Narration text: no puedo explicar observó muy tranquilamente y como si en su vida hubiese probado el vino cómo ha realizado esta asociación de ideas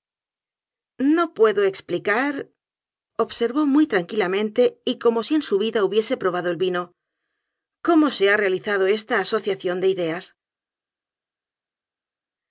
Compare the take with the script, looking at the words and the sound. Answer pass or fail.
fail